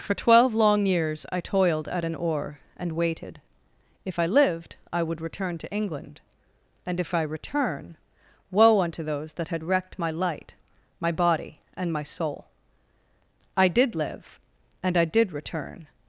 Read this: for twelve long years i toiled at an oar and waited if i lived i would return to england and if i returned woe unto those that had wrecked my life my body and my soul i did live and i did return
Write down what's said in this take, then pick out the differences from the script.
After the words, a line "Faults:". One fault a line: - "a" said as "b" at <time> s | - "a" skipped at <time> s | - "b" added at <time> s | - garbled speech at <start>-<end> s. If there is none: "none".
for twelve long years i toiled at an oar and waited if i lived i would return to england and if i return woe unto those that had wrecked my light my body and my soul i did live and i did return
Faults:
- "returned" said as "return" at 7.2 s
- "life" said as "light" at 10.1 s